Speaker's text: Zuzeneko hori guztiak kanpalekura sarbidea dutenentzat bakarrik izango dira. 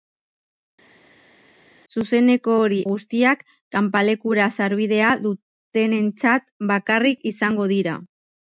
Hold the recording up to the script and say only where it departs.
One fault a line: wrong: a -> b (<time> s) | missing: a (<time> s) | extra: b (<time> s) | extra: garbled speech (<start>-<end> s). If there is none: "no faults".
no faults